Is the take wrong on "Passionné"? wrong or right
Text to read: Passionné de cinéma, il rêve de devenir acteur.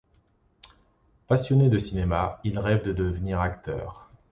right